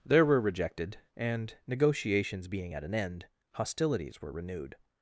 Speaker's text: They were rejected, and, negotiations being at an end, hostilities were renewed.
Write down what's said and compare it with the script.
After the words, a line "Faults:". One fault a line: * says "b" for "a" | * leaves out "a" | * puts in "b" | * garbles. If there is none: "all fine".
There were rejected, and, negotiations being at an end, hostilities were renewed.
Faults:
* says "There" for "They"